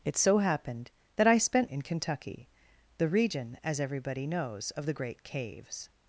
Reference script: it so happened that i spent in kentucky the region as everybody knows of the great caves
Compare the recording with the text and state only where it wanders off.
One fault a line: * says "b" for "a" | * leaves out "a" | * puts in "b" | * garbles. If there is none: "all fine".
all fine